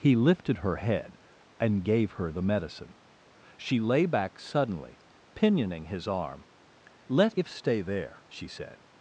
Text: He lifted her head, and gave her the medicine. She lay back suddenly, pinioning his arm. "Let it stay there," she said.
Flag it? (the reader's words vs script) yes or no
yes